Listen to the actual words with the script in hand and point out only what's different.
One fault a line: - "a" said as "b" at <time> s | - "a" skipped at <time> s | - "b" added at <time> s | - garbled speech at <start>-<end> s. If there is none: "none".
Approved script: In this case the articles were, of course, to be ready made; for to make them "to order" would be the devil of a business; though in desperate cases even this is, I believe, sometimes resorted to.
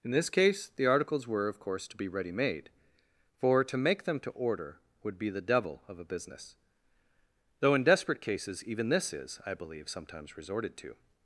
none